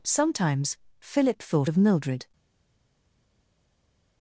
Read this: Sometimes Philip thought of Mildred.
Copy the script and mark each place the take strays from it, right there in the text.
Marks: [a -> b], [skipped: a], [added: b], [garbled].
Sometimes Philip thought of Mildred.